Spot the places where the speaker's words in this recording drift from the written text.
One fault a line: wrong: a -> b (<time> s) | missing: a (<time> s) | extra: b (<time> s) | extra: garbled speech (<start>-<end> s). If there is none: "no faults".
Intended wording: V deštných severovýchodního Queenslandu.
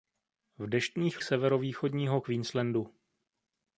no faults